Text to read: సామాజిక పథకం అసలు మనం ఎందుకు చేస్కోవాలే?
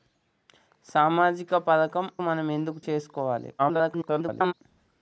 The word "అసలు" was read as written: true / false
false